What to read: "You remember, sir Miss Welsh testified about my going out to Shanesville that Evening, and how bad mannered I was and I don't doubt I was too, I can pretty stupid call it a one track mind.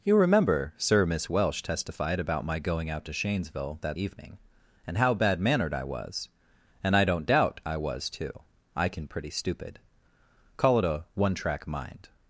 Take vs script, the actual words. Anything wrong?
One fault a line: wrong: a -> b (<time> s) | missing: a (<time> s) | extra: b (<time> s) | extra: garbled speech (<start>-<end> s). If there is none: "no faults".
no faults